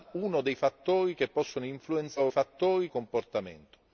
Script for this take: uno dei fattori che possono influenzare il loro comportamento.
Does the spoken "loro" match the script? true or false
false